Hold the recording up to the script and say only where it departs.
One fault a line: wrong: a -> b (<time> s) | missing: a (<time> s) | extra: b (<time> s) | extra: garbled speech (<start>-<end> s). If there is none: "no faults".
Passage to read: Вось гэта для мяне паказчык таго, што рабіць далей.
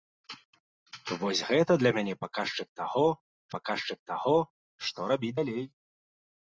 extra: паказчык таго (3.5 s)